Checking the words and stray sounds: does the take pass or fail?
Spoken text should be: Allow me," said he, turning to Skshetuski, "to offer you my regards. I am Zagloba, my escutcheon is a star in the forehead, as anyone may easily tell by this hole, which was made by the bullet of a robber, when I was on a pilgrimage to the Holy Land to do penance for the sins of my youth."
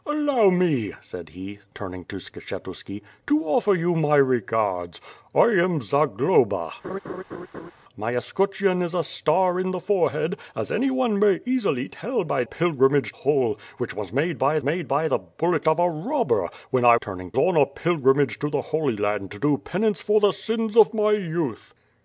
fail